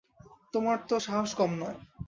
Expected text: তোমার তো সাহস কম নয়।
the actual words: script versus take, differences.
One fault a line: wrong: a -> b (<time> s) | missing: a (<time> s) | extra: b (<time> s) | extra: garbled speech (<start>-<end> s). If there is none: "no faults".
no faults